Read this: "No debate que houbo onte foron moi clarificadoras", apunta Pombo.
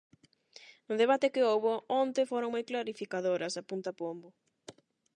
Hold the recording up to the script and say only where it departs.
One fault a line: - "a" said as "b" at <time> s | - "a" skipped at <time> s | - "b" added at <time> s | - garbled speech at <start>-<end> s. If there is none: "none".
none